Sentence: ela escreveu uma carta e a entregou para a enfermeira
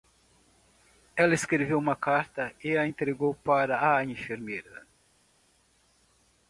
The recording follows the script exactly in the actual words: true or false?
true